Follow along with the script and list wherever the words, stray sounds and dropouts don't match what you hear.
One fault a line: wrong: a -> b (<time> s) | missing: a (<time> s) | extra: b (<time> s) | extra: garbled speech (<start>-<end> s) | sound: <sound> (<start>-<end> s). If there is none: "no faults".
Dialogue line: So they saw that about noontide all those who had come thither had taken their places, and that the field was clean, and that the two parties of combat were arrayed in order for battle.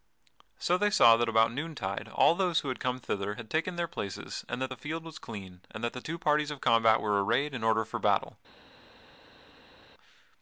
no faults